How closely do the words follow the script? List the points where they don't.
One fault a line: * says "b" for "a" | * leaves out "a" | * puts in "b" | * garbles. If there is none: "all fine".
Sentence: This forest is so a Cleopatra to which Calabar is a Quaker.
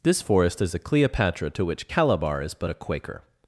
* leaves out "so"
* puts in "but"